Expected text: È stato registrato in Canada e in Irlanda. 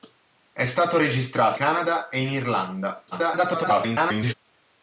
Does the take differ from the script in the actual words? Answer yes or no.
yes